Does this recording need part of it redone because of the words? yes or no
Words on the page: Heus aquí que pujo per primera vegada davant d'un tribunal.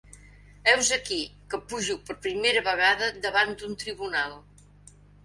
no